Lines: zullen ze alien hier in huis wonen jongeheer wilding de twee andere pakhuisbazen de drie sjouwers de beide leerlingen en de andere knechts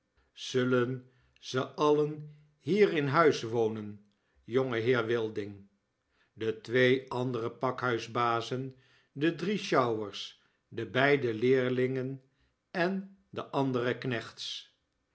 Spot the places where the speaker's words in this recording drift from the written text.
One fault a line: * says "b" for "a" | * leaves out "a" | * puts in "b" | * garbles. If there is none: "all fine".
all fine